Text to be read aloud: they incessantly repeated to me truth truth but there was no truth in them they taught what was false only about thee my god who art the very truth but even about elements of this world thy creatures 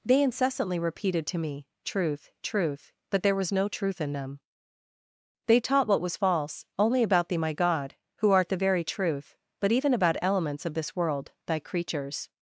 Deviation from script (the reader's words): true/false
false